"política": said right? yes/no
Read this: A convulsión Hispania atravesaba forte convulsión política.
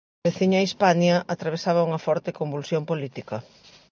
yes